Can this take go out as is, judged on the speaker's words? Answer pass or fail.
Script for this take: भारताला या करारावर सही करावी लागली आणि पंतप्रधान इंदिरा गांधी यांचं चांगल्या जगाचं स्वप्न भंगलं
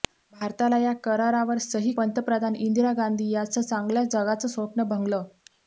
fail